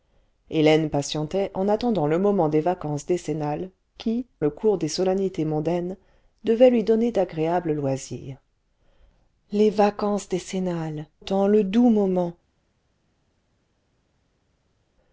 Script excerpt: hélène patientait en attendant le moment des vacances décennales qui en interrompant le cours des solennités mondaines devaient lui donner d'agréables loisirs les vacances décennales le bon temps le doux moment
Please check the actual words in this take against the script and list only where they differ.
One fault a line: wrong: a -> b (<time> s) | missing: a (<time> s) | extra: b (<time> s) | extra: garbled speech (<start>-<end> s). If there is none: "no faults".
missing: en interrompant (4.3 s)
missing: le bon (11.1 s)